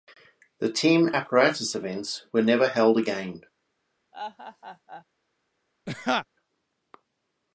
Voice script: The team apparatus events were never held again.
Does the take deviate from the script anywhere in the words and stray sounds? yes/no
yes